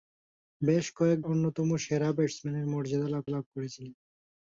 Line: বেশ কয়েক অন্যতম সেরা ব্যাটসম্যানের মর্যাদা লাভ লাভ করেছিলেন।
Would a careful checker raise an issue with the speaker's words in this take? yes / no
no